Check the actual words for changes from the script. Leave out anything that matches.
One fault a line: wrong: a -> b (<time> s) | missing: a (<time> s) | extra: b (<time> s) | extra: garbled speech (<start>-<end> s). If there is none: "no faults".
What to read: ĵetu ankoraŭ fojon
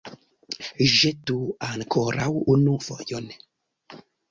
extra: unu (2.5 s)